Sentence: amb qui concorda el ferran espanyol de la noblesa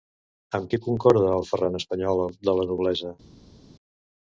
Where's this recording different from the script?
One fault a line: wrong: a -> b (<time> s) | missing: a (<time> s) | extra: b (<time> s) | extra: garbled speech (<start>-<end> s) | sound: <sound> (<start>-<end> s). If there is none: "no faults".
no faults